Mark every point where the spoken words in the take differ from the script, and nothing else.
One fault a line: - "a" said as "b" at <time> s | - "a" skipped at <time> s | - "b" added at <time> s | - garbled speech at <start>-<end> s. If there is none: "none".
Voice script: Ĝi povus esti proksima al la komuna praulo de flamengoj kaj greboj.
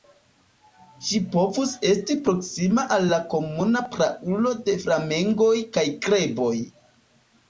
none